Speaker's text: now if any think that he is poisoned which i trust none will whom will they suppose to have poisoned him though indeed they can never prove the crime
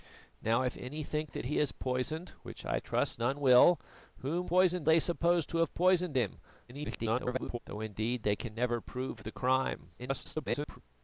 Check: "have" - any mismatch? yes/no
no